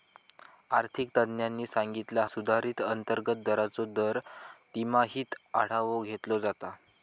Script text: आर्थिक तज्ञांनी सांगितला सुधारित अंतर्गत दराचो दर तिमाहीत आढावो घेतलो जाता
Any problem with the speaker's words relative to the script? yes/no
no